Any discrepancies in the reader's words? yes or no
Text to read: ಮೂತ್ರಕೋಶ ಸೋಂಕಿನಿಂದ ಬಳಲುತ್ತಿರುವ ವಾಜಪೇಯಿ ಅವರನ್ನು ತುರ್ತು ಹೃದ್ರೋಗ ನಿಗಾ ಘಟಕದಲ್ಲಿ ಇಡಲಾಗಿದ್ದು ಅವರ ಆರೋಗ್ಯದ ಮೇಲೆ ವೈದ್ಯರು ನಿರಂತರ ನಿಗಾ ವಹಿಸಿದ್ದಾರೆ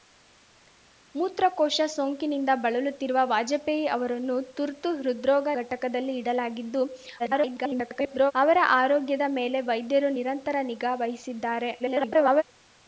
yes